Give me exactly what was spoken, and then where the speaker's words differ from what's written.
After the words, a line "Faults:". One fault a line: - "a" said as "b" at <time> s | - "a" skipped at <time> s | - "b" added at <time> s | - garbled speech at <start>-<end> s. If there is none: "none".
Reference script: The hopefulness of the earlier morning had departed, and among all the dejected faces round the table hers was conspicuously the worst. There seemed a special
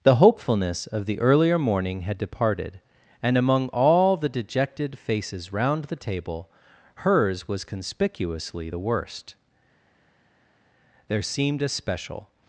The hopefulness of the earlier morning had departed, and among all the dejected faces round the table hers was conspicuously the worst. There seemed a special
Faults:
none